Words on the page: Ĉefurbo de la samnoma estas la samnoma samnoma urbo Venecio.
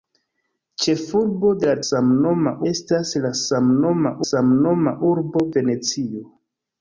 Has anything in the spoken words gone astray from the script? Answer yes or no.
no